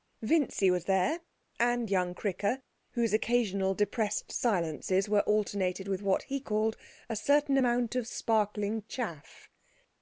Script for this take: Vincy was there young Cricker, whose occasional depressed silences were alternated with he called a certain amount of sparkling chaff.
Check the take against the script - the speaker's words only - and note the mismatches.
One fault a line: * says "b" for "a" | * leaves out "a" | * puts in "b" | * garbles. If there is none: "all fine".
* puts in "and"
* puts in "what"